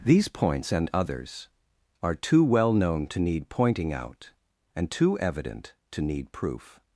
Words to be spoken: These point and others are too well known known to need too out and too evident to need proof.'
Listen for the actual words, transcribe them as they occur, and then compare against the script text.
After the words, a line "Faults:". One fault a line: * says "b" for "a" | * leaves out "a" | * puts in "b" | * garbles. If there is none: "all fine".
These points and others are too well known to need pointing out and too evident to need proof.'
Faults:
* says "points" for "point"
* leaves out "known"
* says "pointing" for "too"